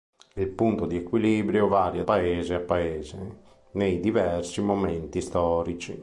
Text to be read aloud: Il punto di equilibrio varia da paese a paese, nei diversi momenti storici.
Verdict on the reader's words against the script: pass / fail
fail